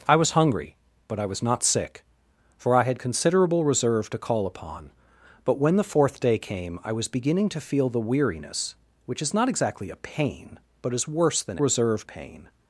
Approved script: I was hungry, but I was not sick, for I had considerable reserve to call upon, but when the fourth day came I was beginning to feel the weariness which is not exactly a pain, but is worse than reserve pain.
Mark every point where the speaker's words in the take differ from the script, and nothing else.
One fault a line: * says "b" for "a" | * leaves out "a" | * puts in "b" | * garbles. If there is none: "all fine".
all fine